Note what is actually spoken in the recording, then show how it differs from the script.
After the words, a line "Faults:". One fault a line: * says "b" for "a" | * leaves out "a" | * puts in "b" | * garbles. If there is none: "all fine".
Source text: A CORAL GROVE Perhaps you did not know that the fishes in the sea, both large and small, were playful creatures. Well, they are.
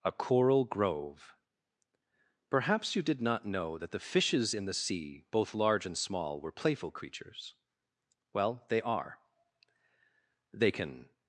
A CORAL GROVE Perhaps you did not know that the fishes in the sea, both large and small, were playful creatures. Well, they are. They can
Faults:
* puts in "They can"